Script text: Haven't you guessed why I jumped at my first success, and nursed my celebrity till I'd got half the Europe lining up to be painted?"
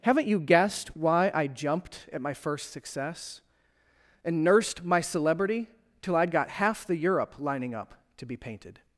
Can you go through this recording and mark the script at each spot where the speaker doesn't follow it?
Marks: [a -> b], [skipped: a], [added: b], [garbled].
Haven't you guessed why I jumped at my first success, and nursed my celebrity till I'd got half the Europe lining up to be painted?"